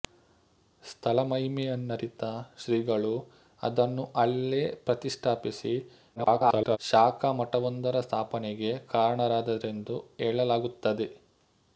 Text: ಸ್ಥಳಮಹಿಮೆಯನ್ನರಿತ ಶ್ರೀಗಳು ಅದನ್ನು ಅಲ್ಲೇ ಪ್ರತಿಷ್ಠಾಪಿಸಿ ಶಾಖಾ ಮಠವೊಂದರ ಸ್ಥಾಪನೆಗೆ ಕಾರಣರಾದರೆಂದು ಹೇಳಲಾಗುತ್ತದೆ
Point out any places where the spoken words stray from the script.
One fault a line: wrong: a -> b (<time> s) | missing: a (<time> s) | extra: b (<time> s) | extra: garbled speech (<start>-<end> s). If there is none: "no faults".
extra: garbled speech (6.2-6.8 s)